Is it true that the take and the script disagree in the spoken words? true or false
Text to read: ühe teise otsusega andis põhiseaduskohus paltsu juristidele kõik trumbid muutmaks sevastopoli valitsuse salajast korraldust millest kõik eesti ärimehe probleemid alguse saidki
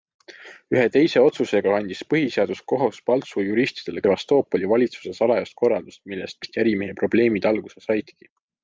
true